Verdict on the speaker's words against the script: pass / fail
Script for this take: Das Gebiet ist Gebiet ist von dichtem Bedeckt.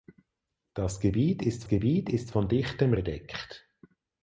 pass